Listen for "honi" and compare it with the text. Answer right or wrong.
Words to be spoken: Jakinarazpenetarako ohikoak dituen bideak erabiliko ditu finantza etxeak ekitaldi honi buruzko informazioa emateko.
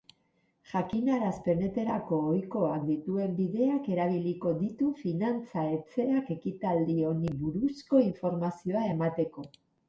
right